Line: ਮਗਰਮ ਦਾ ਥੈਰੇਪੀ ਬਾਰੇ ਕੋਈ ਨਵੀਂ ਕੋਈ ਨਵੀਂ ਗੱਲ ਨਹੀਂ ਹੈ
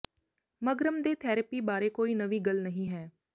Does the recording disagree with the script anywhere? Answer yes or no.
yes